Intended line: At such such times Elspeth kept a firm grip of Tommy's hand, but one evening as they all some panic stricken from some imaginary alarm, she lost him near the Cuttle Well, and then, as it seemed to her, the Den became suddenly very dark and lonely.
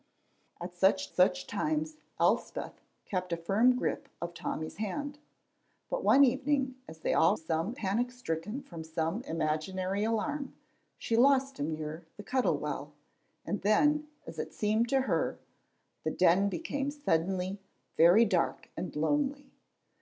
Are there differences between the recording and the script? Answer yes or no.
no